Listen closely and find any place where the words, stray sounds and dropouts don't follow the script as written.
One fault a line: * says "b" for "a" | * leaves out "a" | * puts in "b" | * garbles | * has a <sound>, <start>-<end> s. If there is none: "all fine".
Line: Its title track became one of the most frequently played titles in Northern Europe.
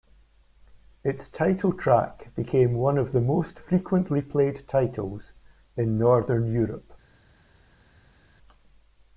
all fine